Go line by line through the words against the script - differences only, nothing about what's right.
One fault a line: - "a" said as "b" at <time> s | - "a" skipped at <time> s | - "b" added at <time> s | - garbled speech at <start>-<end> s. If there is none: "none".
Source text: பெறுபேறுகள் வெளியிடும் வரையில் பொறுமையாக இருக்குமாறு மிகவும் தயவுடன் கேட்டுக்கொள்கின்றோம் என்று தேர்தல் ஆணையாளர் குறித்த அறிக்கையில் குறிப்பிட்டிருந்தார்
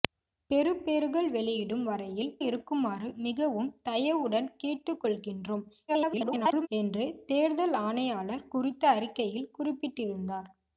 - "பொறுமையாக" skipped at 2.3 s
- garbled speech at 5.9-6.7 s